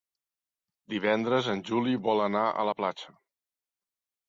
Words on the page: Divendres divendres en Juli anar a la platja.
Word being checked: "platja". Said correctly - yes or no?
yes